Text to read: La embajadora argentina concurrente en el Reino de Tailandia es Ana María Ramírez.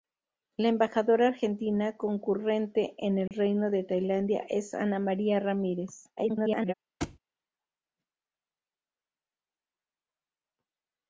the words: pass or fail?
fail